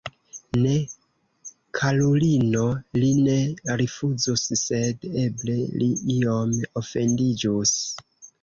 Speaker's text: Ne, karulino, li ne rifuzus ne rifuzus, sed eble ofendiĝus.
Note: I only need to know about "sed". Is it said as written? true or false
false